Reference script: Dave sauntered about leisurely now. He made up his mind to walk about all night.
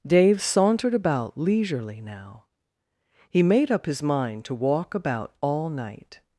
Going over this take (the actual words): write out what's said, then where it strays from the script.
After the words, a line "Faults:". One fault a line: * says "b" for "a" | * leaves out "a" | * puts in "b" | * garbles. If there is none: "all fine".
Dave sauntered about leisurely now. He made up his mind to walk about all night.
Faults:
all fine